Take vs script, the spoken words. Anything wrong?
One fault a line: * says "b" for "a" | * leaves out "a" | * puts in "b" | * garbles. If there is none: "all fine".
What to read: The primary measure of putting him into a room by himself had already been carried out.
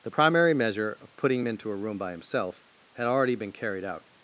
all fine